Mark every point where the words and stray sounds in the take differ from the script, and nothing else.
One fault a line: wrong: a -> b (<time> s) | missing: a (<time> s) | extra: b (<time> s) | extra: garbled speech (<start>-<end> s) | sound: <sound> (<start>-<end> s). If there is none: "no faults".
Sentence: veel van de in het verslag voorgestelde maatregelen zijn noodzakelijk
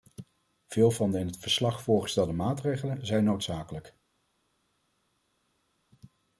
no faults